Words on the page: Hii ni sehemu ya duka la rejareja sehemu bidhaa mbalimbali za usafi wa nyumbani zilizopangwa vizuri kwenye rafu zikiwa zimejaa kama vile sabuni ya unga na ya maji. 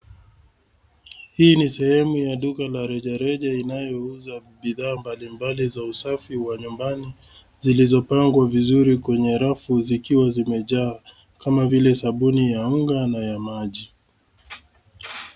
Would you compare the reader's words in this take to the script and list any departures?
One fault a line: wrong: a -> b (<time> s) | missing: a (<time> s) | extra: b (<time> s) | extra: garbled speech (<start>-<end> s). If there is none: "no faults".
wrong: sehemu -> inayouza (3.5 s)